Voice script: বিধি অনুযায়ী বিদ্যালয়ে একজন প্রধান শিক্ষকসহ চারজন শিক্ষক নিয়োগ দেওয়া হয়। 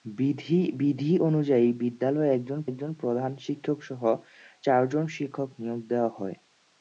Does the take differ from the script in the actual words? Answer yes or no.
yes